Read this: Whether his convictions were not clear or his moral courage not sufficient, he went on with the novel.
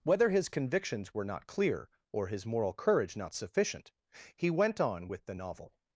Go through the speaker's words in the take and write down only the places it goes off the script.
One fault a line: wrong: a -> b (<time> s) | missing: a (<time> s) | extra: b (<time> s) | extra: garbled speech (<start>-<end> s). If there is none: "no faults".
no faults